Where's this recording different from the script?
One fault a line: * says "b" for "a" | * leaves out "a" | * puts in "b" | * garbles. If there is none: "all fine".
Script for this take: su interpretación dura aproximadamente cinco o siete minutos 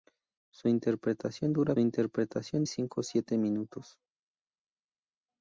* says "interpretación" for "aproximadamente"